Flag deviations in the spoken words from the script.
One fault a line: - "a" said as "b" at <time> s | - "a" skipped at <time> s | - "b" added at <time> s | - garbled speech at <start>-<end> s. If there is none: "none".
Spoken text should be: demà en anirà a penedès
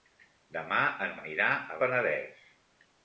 none